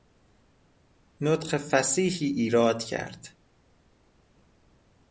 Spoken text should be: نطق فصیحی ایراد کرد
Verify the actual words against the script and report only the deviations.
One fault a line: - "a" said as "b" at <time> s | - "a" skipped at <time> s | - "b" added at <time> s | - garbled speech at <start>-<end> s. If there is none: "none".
none